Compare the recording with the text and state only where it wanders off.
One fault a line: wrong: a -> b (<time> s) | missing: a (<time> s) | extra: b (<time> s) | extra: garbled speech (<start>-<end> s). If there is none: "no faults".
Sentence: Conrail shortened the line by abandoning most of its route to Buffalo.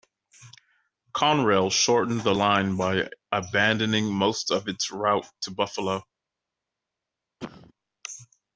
no faults